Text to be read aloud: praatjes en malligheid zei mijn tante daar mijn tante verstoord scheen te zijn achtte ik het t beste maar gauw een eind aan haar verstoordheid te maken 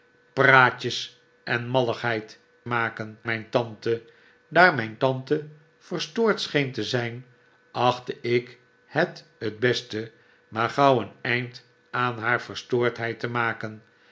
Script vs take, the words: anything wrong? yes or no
yes